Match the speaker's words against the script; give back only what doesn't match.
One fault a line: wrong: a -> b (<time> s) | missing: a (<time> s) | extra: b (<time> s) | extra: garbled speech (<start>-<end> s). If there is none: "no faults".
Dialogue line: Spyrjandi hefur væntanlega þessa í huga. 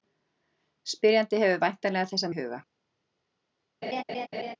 no faults